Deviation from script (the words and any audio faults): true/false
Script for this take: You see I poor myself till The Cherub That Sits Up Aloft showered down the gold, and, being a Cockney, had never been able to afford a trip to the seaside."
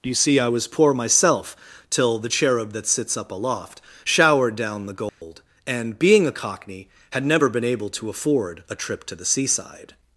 true